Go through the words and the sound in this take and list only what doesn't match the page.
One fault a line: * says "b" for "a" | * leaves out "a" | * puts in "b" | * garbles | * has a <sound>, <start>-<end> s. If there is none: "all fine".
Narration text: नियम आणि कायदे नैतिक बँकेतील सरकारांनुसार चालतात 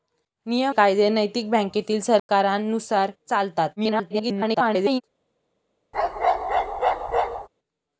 * leaves out "आणि"
* has a dropout, 2.2-2.3 s
* garbles
* has a bark, 5.9-7.5 s